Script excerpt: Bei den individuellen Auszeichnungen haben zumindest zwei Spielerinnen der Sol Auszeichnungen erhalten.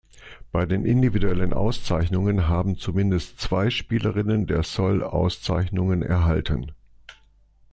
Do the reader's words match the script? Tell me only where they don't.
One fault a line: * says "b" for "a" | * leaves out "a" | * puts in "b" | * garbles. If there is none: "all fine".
all fine